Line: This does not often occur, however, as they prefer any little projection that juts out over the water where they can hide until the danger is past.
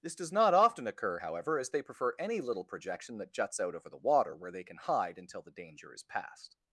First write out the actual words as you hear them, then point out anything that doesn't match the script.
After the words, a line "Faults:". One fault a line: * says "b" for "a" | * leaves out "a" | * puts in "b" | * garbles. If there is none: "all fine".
This does not often occur, however, as they prefer any little projection that juts out over the water where they can hide until the danger is past.
Faults:
all fine